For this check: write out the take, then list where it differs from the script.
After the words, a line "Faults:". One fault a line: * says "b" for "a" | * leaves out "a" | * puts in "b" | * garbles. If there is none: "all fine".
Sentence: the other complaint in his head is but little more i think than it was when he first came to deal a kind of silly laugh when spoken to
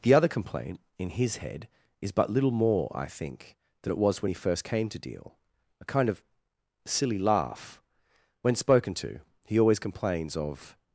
the other complaint in his head is but little more i think than it was when he first came to deal a kind of silly laugh when spoken to he always complains of
Faults:
* puts in "he always complains of"